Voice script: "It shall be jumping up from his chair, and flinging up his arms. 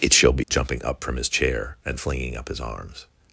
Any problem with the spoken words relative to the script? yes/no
no